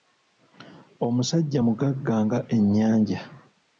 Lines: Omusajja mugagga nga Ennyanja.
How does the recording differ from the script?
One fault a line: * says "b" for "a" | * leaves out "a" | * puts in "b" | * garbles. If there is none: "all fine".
all fine